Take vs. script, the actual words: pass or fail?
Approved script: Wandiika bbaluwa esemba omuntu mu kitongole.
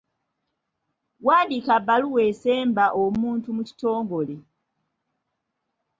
pass